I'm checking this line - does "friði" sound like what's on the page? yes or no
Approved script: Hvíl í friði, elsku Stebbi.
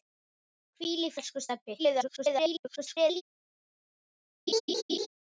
no